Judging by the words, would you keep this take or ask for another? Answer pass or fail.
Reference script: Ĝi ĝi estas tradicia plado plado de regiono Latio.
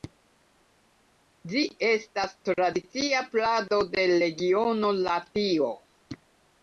fail